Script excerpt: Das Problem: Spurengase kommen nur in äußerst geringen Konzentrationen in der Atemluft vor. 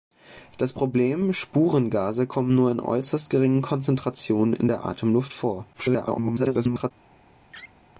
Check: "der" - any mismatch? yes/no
no